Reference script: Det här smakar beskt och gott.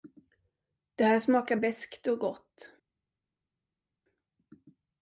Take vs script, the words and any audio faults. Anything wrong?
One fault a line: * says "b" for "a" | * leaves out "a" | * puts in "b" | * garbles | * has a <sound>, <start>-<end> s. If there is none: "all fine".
all fine